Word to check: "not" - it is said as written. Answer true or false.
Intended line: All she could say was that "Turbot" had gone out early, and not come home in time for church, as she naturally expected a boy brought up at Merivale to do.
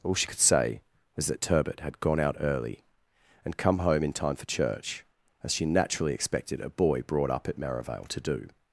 false